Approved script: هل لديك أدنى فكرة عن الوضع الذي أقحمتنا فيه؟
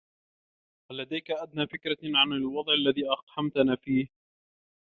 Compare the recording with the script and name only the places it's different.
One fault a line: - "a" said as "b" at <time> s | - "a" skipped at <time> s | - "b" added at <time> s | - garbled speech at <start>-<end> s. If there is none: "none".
none